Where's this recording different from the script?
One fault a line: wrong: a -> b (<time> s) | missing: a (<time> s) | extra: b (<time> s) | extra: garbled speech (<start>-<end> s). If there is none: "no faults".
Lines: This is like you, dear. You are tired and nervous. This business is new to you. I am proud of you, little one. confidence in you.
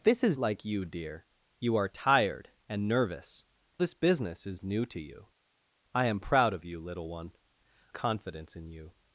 no faults